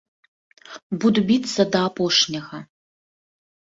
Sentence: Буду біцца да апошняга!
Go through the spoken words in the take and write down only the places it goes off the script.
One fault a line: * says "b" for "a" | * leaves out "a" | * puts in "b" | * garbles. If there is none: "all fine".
all fine